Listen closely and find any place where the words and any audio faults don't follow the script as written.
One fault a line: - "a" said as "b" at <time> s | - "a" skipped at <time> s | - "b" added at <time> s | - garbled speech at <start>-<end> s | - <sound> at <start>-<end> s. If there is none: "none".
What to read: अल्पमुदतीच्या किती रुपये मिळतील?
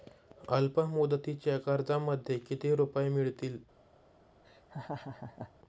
- "कर्जामध्ये" added at 1.6 s
- laugh at 4.4-5.5 s